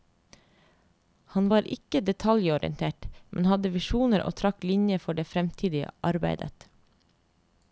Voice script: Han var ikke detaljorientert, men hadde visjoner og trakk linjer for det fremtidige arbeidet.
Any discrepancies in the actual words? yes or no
no